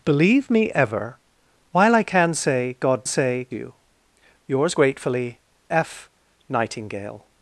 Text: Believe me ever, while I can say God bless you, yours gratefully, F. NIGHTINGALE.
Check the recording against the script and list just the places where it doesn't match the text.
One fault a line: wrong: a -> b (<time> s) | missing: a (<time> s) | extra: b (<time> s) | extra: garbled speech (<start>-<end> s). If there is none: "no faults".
wrong: bless -> say (3.0 s)